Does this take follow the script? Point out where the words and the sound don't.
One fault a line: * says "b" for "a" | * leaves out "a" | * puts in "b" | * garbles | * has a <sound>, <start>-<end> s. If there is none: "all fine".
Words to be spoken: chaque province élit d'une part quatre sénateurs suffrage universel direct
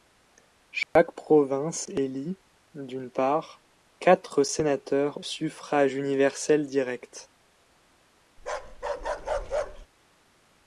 * has a dropout, 0.8-1.0 s
* has a bark, 8.4-9.9 s